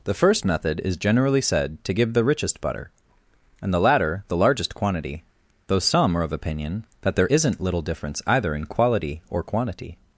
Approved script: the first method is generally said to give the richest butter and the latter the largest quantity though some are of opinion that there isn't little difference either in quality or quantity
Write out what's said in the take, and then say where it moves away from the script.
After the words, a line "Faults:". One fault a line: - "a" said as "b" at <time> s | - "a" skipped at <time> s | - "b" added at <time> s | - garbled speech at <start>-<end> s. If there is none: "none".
the first method is generally said to give the richest butter and the latter the largest quantity though some are of opinion that there isn't little difference either in quality or quantity
Faults:
none